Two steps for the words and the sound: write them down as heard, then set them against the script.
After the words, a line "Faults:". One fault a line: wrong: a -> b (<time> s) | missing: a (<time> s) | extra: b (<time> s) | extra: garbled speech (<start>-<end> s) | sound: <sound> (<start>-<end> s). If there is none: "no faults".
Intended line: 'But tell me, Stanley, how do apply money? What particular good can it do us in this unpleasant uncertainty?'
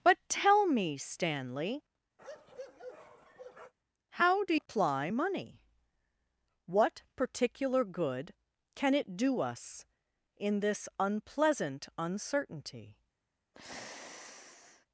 'But tell me, Stanley, how do apply money? What particular good can it do us in this unpleasant uncertainty?'
Faults:
sound: bark (2.2-3.7 s)
sound: sigh (13.5-14.9 s)